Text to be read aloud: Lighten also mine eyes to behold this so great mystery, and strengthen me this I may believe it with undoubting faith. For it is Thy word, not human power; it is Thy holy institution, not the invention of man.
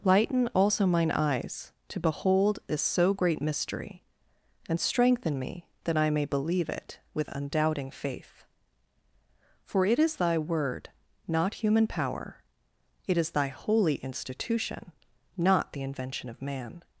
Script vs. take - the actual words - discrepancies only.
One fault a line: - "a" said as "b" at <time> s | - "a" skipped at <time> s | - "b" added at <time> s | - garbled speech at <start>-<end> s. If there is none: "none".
- "this" said as "that" at 5.8 s